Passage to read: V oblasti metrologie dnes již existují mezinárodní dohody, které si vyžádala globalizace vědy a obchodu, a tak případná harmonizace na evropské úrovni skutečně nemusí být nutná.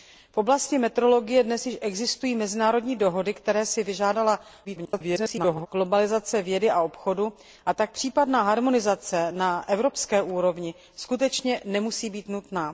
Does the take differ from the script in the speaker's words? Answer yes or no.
yes